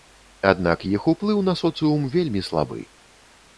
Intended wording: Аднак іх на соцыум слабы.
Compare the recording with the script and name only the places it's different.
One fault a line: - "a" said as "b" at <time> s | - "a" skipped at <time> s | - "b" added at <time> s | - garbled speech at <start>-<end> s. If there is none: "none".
- "уплыў" added at 1.1 s
- "вельмі" added at 2.2 s